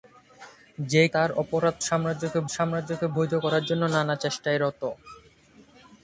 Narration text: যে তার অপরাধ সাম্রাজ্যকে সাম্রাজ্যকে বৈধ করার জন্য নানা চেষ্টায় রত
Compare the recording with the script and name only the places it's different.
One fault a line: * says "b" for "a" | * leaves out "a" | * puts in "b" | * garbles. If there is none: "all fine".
all fine